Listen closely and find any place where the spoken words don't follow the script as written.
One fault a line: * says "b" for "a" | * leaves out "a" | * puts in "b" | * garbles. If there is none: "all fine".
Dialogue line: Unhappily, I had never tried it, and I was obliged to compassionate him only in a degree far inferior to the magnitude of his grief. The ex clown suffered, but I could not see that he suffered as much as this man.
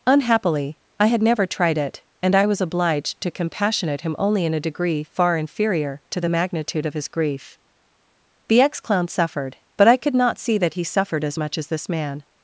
all fine